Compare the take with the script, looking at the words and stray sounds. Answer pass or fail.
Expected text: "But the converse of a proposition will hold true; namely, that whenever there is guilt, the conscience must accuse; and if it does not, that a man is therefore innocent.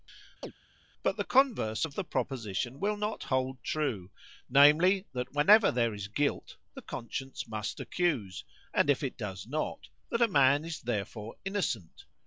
fail